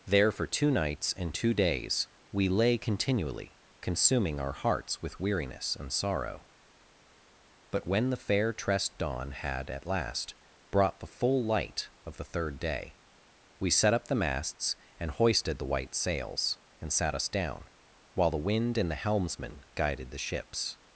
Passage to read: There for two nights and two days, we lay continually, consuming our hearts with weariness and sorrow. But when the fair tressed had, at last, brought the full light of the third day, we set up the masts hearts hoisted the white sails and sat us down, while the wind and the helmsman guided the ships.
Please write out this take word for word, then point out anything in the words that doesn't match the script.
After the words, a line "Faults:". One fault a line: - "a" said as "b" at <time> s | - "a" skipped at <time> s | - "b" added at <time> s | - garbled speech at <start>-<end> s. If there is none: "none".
There for two nights and two days, we lay continually, consuming our hearts with weariness and sorrow. But when the fair tressed dawn had, at last, brought the full light of the third day, we set up the masts and hoisted the white sails and sat us down, while the wind and the helmsman guided the ships.
Faults:
- "dawn" added at 9.0 s
- "hearts" said as "and" at 15.0 s